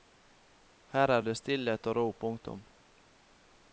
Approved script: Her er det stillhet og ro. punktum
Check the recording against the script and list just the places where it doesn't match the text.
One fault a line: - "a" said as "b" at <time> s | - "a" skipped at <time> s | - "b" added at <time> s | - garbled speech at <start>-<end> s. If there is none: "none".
none